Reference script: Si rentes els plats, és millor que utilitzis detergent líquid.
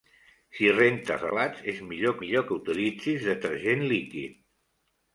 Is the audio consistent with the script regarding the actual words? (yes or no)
no